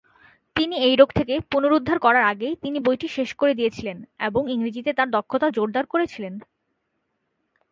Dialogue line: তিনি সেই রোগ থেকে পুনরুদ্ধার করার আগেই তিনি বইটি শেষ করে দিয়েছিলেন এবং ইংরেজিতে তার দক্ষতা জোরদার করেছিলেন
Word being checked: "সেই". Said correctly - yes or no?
no